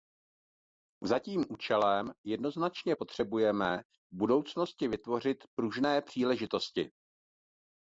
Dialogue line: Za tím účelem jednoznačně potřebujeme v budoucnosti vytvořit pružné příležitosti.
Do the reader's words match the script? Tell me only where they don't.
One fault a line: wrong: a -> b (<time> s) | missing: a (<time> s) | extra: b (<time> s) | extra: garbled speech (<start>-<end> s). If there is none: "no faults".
no faults